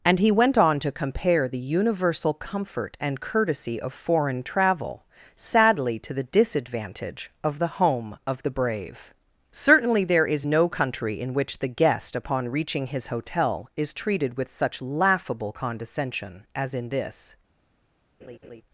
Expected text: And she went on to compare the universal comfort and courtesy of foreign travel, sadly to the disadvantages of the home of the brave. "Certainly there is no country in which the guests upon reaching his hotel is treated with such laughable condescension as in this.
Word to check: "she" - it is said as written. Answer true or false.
false